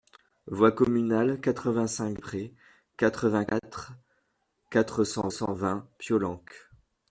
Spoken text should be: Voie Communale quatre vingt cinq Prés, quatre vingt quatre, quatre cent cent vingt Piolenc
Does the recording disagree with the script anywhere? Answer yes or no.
no